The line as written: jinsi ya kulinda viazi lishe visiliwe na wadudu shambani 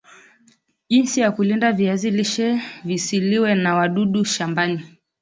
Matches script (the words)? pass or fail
pass